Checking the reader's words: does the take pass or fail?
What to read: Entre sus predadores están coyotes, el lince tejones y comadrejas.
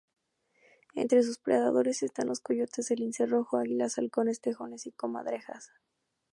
fail